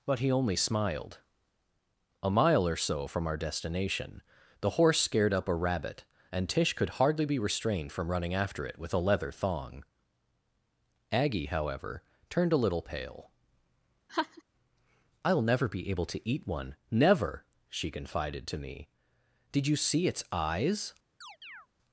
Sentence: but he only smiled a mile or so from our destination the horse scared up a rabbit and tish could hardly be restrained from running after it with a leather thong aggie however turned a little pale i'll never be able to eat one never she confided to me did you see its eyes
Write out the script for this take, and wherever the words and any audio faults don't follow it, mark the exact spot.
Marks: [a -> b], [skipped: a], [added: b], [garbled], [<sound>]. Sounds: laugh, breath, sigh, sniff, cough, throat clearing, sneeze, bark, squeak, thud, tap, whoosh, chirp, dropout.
but he only smiled a mile or so from our destination the horse scared up a rabbit and tish could hardly be restrained from running after it with a leather thong aggie however turned a little pale [laugh] i'll never be able to eat one never she confided to me did you see its eyes [chirp]